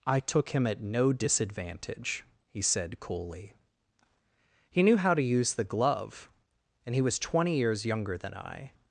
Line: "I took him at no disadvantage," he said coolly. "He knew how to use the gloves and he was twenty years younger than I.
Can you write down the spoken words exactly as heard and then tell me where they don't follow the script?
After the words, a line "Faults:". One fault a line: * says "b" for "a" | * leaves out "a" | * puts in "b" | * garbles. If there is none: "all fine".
"I took him at no disadvantage," he said coolly. "He knew how to use the glove and he was twenty years younger than I.
Faults:
* says "glove" for "gloves"